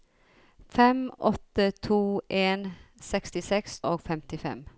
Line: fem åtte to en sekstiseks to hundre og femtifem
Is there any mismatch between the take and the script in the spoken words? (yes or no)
yes